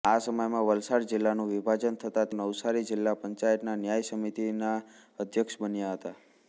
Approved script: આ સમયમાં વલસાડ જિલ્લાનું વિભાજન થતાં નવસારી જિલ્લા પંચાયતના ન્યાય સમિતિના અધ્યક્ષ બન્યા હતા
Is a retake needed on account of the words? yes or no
no